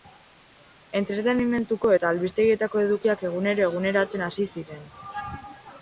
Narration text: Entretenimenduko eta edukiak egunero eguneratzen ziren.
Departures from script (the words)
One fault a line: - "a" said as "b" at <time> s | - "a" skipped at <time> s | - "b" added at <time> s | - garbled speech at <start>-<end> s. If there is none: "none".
- "albistegietako" added at 2.1 s
- "hasi" added at 4.3 s